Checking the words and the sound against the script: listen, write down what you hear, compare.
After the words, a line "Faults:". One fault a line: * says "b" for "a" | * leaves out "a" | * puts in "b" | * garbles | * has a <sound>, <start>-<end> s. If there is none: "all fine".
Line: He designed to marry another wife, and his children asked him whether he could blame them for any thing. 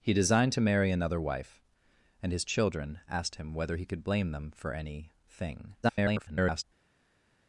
He designed to marry another wife, and his children asked him whether he could blame them for any thing. [garbled]
Faults:
* garbles